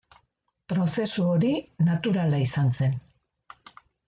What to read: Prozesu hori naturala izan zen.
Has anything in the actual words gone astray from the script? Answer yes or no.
no